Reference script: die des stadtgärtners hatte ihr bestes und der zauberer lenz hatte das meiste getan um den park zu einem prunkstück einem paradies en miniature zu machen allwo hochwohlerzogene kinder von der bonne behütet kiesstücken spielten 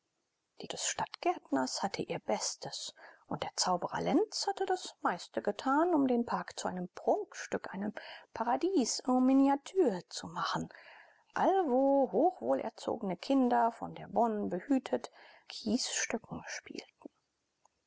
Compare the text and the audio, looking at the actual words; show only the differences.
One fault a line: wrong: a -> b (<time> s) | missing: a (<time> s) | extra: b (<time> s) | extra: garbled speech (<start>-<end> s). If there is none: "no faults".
no faults